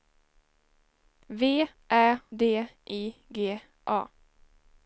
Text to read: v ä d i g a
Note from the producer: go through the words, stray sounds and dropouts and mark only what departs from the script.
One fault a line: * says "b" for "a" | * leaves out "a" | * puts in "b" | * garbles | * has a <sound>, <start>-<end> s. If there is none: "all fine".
all fine